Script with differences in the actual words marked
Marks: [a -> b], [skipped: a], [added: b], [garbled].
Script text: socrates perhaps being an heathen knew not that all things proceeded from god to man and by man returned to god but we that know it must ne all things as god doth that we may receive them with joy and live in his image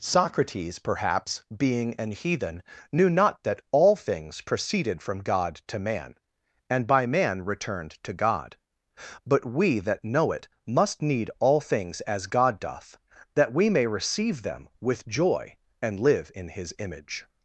socrates perhaps being an heathen knew not that all things proceeded from god to man and by man returned to god but we that know it must [ne -> need] all things as god doth that we may receive them with joy and live in his image